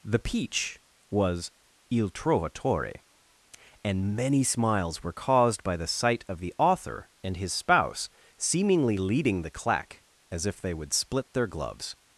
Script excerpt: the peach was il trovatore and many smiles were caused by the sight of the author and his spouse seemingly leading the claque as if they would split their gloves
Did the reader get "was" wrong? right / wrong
right